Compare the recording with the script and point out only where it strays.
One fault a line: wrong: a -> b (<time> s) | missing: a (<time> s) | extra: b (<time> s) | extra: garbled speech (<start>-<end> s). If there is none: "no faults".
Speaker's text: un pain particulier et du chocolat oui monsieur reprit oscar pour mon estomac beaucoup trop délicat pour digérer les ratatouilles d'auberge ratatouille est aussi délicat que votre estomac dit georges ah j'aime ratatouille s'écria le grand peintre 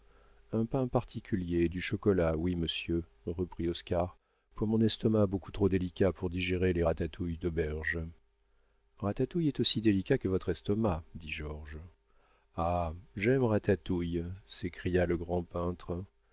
no faults